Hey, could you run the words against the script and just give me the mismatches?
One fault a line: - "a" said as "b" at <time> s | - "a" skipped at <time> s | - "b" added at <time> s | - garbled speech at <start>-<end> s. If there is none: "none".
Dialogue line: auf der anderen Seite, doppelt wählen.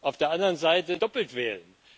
none